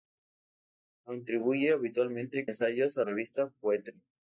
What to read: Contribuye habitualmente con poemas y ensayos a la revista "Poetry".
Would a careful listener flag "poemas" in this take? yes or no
yes